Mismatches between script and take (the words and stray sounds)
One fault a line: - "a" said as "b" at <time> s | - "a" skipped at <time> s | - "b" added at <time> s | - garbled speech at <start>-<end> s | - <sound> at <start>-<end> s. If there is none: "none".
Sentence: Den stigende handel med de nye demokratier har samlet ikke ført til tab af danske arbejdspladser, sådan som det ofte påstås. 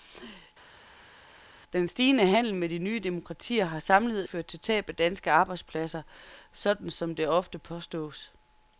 - "ikke" skipped at 4.3 s